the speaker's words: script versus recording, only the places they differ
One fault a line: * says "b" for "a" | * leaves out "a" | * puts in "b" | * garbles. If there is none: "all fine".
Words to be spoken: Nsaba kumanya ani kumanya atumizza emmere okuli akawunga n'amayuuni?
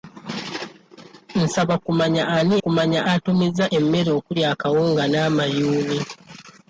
all fine